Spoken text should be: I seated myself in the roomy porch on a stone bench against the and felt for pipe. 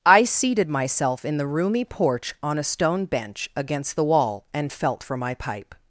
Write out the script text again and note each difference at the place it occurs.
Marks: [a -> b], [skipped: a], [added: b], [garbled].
I seated myself in the roomy porch on a stone bench against the [added: wall] and felt for [added: my] pipe.